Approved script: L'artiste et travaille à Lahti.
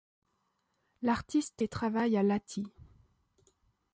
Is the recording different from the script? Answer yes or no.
no